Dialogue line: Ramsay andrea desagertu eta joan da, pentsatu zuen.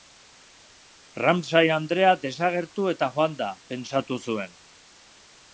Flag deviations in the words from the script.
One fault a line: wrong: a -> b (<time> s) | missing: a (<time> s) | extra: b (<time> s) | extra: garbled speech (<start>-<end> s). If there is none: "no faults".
no faults